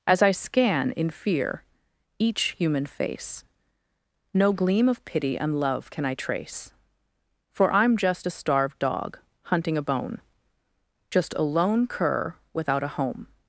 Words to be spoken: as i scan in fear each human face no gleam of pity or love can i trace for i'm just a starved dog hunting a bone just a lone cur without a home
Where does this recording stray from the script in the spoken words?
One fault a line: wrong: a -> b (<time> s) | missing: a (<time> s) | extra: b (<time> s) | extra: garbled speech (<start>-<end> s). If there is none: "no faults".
wrong: or -> and (5.4 s)